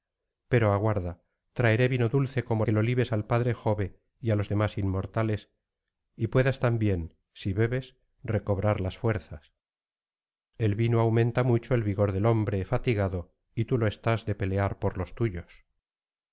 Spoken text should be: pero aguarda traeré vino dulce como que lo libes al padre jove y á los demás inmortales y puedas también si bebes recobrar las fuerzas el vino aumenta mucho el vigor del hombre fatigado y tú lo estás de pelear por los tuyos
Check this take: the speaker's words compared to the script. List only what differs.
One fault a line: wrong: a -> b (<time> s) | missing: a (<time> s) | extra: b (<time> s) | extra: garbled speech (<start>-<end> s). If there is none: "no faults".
no faults